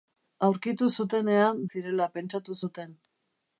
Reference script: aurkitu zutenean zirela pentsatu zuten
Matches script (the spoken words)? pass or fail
pass